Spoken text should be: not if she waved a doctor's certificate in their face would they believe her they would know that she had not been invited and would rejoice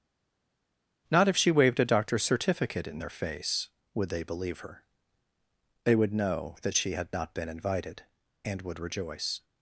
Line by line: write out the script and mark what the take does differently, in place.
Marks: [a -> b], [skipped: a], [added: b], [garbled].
not if she waved a doctor's certificate in their face would they believe her they would know that she had not been invited and would rejoice